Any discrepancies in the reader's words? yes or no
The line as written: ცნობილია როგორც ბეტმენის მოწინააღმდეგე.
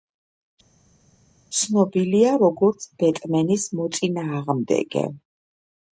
no